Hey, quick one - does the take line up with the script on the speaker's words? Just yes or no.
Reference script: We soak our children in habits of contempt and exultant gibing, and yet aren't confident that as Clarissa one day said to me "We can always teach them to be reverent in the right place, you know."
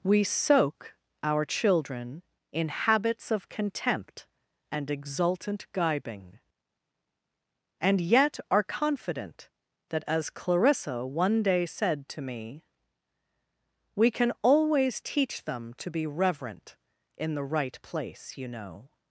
no